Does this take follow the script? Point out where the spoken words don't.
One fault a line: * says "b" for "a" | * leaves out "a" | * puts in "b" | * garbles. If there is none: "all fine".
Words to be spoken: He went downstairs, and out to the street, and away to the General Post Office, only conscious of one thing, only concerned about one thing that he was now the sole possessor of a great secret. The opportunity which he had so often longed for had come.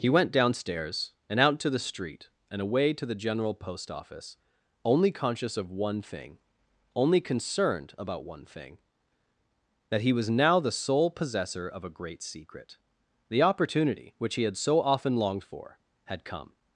all fine